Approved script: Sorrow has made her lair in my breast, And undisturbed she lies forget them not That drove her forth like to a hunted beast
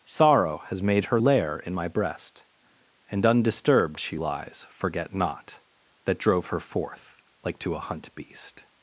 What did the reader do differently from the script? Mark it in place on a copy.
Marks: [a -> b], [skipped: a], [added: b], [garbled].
Sorrow has made her lair in my breast, And undisturbed she lies forget [skipped: them] not That drove her forth like to a [hunted -> hunt] beast